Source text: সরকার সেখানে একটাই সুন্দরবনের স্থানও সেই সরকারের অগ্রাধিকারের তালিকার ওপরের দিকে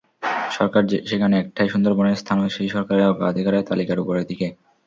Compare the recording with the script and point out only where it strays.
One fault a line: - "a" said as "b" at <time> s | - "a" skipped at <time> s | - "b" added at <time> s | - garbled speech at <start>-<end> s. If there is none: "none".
none